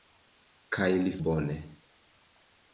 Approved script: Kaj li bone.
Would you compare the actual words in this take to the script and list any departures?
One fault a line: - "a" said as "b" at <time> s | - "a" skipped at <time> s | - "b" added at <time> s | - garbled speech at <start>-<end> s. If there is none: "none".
none